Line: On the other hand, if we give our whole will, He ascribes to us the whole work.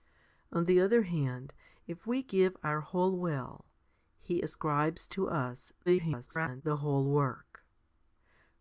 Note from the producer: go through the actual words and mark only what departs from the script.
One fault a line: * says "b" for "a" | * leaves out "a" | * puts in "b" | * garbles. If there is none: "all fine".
* garbles